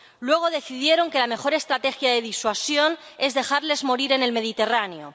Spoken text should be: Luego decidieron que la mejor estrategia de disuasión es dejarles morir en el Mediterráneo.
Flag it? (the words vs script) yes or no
no